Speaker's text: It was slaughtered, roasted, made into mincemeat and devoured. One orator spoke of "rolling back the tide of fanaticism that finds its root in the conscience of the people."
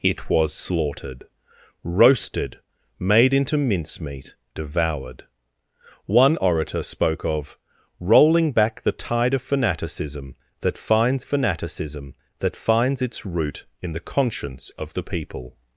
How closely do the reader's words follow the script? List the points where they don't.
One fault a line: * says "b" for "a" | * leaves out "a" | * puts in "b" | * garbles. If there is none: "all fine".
* leaves out "and"
* puts in "fanaticism that finds"